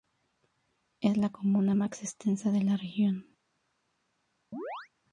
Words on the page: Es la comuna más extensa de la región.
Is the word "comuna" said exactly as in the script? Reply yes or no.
yes